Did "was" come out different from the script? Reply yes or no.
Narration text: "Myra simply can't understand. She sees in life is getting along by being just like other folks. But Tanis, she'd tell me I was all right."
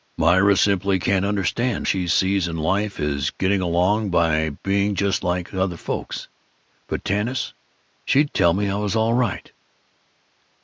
no